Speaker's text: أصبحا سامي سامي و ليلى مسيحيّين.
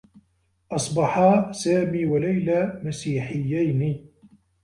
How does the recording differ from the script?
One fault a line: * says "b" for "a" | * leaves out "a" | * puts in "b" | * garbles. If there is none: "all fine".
* leaves out "سامي"